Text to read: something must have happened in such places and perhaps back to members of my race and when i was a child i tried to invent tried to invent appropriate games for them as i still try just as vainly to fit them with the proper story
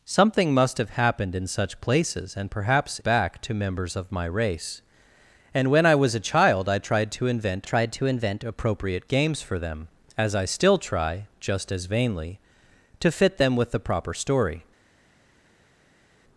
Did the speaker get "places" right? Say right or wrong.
right